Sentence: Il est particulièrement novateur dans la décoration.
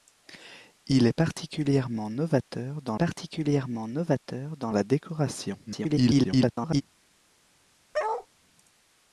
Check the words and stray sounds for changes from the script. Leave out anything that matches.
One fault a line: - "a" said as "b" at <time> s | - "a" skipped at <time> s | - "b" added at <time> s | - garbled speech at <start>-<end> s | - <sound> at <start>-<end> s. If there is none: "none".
- "particulièrement novateur dans" added at 2.9 s
- garbled speech at 5.7-6.8 s
- bark at 7.9-8.3 s